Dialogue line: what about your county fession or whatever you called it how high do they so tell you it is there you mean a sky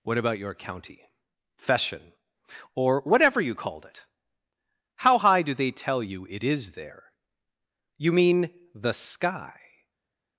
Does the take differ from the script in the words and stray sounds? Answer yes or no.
yes